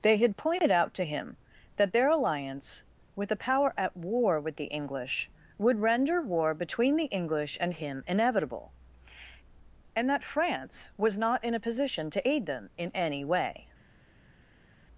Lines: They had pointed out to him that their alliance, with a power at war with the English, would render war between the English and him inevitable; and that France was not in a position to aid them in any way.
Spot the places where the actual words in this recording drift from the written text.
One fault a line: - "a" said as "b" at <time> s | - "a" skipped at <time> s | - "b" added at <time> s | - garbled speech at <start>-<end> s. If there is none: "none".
none